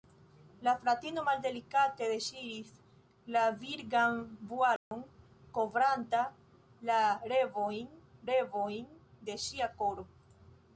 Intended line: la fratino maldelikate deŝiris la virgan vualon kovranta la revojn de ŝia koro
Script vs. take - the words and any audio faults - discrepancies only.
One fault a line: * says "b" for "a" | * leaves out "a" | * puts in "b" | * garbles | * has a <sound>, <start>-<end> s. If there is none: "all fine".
* has a dropout, 4.8-4.9 s
* puts in "revojn"